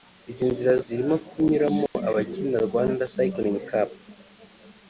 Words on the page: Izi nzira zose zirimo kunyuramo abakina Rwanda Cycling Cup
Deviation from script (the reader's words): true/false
true